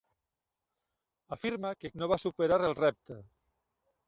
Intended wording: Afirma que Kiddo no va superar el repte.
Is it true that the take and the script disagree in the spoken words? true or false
true